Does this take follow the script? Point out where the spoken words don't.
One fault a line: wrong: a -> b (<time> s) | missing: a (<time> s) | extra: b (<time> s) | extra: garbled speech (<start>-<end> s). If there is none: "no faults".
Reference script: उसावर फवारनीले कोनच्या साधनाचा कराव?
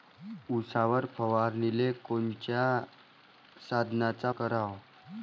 no faults